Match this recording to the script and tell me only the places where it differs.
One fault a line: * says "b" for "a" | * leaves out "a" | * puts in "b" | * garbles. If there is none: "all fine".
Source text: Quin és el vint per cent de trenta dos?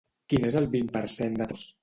* leaves out "trenta"